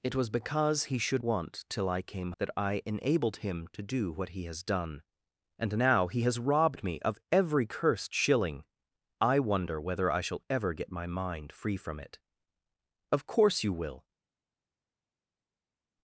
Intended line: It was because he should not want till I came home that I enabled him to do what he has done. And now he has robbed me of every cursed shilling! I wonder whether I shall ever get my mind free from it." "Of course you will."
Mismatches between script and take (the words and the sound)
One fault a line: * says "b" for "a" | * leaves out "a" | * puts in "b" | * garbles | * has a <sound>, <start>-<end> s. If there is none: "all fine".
* leaves out "not"
* leaves out "home"